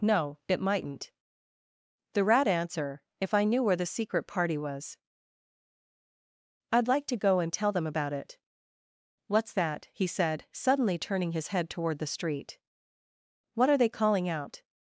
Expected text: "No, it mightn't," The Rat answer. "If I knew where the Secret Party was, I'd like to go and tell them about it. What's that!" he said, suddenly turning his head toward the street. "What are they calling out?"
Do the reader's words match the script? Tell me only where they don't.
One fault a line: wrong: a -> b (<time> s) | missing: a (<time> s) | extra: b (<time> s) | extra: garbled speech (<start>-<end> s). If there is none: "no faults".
no faults